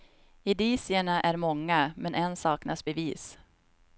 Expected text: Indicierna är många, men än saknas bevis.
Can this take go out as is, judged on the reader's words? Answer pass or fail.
pass